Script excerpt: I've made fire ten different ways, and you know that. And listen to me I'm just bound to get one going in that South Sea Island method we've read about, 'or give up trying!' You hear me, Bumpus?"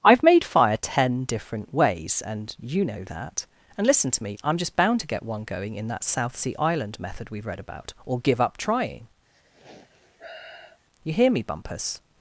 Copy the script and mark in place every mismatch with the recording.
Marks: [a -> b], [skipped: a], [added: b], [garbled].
I've made fire ten different ways, and you know that. And listen to me I'm just bound to get one going in that South Sea Island method we've read about, 'or give up trying!' You hear me, Bumpus?"